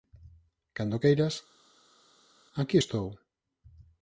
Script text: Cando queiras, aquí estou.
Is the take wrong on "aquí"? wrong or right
right